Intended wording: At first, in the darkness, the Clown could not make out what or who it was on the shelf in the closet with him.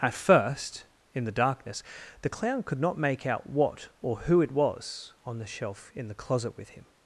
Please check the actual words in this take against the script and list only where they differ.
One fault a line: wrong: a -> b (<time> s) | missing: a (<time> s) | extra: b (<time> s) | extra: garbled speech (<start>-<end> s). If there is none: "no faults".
no faults